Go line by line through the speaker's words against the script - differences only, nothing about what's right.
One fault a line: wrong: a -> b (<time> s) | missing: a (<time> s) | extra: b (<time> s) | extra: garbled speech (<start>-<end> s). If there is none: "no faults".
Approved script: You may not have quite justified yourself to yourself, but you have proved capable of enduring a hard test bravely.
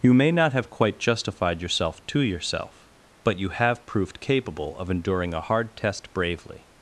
no faults